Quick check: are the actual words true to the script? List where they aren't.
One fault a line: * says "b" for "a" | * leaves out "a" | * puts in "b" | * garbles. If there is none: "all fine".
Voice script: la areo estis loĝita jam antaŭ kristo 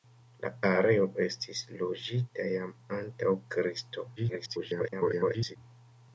* garbles